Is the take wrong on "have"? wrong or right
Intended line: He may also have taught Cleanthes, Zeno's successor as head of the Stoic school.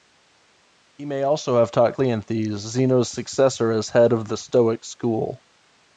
right